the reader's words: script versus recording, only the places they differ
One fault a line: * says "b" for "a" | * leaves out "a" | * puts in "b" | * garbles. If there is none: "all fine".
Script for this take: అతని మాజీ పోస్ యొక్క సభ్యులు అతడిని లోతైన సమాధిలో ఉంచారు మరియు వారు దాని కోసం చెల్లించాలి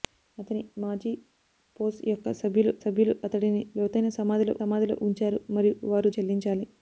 * puts in "సభ్యులు"
* puts in "సమాధిలో"
* leaves out "దాని కోసం"